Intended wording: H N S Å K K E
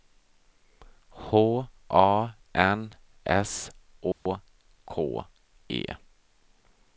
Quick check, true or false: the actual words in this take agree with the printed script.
false